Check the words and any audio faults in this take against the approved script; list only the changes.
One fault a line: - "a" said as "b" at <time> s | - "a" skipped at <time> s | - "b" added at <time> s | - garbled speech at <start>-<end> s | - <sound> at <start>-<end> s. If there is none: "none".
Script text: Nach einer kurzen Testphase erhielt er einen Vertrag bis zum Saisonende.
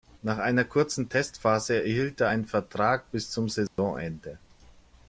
- dropout at 3.7-3.8 s